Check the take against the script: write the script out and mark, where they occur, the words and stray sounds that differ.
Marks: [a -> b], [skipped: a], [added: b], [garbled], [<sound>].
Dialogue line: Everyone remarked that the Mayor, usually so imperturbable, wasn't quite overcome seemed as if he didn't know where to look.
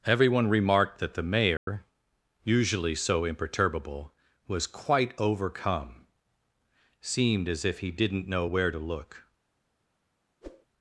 Everyone remarked that the Mayor, [dropout] usually so imperturbable, [wasn't -> was] quite overcome seemed as if he didn't know where to look. [whoosh]